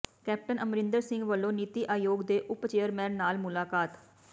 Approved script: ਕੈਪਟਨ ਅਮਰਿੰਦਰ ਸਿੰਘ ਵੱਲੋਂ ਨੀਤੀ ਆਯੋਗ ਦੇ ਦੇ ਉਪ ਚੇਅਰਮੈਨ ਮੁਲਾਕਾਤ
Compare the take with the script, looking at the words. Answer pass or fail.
fail